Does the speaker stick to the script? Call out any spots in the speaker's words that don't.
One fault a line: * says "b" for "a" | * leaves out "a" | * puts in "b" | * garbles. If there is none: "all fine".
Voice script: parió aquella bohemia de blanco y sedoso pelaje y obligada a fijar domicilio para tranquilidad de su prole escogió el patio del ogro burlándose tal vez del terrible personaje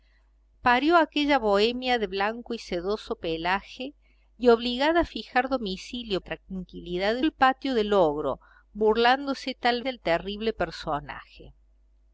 * leaves out "para"
* leaves out "su prole escogió"
* leaves out "vez"